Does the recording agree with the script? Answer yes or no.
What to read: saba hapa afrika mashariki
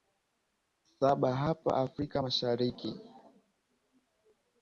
yes